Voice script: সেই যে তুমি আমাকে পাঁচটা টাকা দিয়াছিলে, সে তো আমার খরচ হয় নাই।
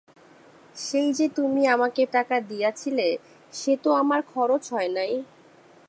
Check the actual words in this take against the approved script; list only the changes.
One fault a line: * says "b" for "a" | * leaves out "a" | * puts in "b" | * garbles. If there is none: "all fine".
* leaves out "পাঁচটা"